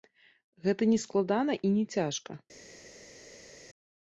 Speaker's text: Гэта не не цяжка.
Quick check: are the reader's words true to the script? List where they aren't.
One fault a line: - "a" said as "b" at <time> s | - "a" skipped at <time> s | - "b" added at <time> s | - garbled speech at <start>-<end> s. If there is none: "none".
- "складана і" added at 1.1 s